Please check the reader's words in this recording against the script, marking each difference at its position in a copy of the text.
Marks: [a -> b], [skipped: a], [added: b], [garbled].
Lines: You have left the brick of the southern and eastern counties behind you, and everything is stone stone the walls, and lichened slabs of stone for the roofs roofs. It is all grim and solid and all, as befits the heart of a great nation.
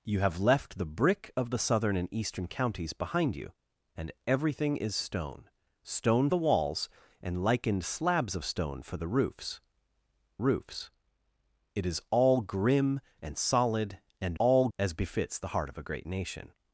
You have left the brick of the southern and eastern counties behind you, and everything is stone stone the walls, and lichened slabs of stone for the roofs roofs. It is all grim and solid and all, as befits the heart of a great nation.